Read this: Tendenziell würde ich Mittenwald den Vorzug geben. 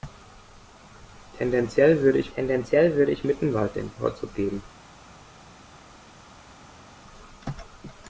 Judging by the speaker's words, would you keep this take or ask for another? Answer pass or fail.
fail